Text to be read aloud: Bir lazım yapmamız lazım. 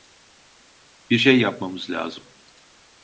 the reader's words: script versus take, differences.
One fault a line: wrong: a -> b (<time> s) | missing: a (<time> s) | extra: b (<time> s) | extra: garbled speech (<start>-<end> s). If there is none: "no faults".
wrong: lazım -> şey (1.2 s)